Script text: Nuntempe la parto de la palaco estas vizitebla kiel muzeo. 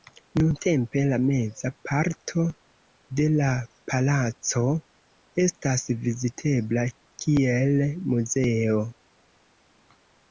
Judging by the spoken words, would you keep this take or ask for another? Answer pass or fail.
fail